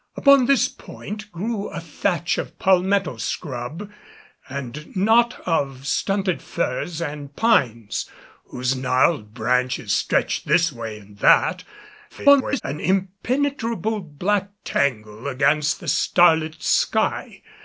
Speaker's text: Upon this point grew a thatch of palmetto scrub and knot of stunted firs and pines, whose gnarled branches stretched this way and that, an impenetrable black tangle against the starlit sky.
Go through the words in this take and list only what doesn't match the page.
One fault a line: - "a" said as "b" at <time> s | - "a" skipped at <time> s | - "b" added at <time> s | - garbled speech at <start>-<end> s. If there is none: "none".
- garbled speech at 12.1-12.6 s